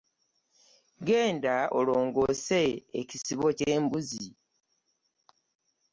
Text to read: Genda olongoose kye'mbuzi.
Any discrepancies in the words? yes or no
yes